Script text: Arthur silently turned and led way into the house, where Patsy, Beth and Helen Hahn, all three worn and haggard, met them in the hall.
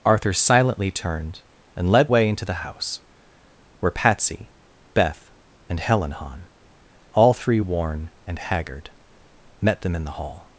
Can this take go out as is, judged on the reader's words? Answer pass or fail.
pass